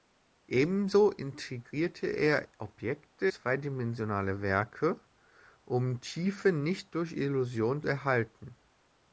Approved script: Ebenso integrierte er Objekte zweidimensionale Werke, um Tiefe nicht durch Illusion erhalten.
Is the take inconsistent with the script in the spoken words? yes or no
no